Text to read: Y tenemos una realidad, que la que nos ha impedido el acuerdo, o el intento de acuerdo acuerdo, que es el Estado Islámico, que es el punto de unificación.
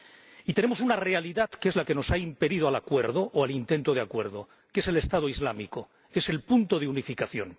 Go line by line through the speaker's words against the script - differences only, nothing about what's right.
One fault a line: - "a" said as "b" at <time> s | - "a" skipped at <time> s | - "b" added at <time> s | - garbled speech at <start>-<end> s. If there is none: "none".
- "es" added at 1.7 s
- "acuerdo" skipped at 4.5 s